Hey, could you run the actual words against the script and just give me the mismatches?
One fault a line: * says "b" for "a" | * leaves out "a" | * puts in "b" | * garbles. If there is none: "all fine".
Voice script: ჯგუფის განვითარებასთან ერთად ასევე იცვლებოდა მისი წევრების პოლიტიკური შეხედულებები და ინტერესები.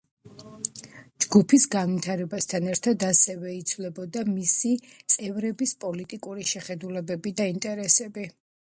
all fine